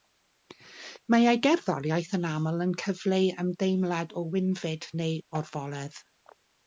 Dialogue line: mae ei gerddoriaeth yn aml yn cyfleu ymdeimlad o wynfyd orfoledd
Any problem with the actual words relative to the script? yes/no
yes